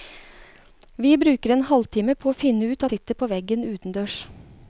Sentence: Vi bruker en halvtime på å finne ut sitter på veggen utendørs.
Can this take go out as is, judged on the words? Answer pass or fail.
pass